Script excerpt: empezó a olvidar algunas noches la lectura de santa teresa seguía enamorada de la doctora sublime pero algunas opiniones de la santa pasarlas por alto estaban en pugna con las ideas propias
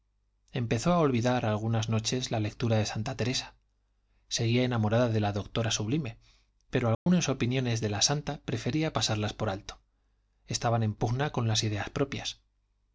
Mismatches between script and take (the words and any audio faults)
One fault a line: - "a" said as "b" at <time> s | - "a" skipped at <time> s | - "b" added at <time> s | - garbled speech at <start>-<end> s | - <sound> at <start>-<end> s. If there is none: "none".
- dropout at 6.9-7.1 s
- "prefería" added at 8.4 s